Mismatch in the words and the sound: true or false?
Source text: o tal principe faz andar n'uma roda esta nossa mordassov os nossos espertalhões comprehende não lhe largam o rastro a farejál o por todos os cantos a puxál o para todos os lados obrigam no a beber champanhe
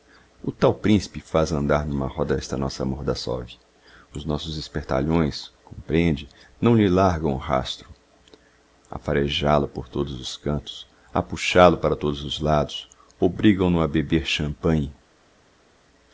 false